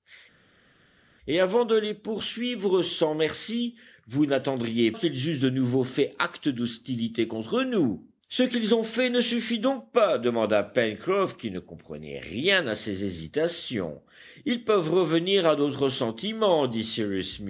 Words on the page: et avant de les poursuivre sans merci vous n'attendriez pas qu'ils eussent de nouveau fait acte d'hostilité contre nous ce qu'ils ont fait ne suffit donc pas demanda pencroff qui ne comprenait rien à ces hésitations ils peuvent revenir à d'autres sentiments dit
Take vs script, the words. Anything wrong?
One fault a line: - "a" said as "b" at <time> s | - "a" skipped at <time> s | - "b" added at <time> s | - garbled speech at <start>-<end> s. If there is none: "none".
- "pas" skipped at 4.9 s